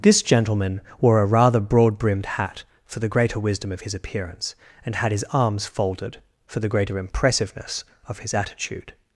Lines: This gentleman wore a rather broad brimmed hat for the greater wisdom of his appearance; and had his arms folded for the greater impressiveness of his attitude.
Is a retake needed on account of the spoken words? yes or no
no